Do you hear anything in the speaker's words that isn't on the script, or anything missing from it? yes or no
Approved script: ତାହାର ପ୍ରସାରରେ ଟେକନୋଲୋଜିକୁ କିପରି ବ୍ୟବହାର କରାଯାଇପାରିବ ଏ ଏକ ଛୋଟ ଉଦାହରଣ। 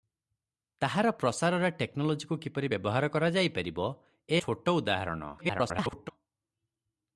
yes